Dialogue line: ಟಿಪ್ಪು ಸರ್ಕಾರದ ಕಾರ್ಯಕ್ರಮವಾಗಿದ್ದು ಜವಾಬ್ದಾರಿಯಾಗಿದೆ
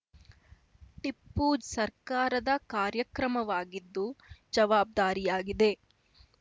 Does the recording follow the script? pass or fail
pass